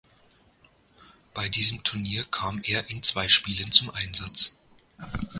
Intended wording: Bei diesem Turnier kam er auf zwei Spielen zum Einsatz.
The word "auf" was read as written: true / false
false